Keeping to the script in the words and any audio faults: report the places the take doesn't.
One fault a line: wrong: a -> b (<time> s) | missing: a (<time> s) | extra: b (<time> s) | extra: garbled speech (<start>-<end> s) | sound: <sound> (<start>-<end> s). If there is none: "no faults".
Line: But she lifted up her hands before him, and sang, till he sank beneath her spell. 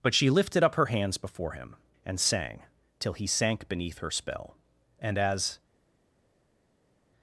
extra: And as (5.0 s)